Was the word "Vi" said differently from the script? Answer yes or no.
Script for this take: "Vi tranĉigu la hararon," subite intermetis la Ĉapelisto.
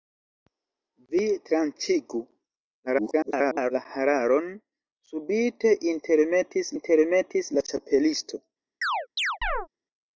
no